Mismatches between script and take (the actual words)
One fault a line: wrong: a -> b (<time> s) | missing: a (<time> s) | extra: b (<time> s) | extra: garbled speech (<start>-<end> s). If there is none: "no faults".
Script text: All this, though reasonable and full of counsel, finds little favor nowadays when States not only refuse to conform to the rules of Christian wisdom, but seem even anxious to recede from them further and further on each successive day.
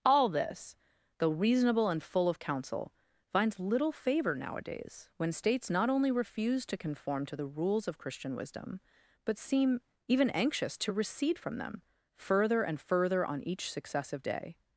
no faults